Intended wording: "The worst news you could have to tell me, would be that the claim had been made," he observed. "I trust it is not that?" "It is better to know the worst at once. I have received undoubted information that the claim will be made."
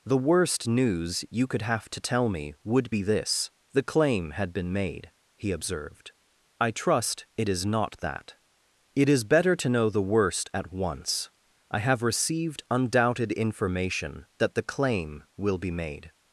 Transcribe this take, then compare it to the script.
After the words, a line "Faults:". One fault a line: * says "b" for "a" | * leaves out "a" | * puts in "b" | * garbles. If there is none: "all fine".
"The worst news you could have to tell me, would be this the claim had been made," he observed. "I trust it is not that?" "It is better to know the worst at once. I have received undoubted information that the claim will be made."
Faults:
* says "this" for "that"